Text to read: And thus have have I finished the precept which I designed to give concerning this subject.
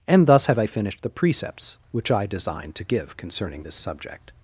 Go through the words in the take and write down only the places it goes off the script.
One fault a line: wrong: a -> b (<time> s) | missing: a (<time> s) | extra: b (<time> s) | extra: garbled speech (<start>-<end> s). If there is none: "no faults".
missing: have (0.6 s)
wrong: precept -> precepts (1.1 s)